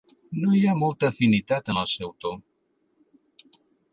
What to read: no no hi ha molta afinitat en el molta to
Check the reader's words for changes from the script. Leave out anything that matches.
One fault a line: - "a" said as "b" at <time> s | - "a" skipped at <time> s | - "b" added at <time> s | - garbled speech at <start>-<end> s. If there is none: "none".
- "no" skipped at 0.5 s
- "molta" said as "seu" at 1.9 s